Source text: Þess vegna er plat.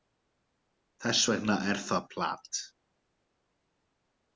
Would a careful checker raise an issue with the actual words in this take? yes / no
yes